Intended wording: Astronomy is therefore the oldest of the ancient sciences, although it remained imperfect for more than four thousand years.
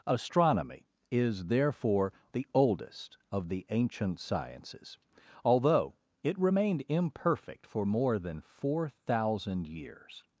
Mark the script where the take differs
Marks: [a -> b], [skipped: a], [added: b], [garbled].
Astronomy is therefore the oldest of the ancient sciences, although it remained imperfect for more than four thousand years.